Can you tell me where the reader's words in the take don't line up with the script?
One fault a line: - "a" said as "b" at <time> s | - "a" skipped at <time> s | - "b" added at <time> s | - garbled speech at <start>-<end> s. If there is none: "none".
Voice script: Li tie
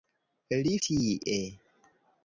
none